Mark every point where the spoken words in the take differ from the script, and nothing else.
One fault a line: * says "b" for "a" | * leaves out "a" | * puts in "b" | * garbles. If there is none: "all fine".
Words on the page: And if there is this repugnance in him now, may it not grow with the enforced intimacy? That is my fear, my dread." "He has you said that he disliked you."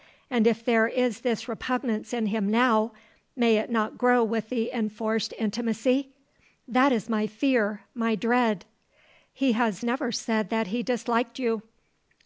* says "never" for "you"